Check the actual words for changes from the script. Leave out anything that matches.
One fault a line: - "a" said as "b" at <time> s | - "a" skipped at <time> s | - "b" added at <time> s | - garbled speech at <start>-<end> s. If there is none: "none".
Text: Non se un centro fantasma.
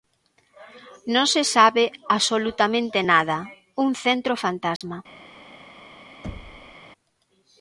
- "sabe absolutamente nada" added at 1.6 s